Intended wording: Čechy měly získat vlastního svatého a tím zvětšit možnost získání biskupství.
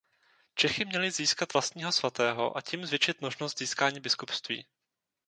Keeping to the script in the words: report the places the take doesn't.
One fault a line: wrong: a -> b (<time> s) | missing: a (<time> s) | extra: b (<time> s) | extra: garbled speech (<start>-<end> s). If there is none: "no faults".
no faults